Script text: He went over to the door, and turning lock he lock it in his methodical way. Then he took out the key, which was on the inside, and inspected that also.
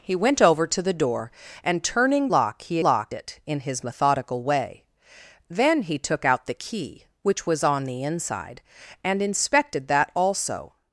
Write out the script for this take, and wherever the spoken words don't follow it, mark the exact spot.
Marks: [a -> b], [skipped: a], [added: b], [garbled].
He went over to the door, and turning lock he lock it in his methodical way. Then he took out the key, which was on the inside, and inspected that also.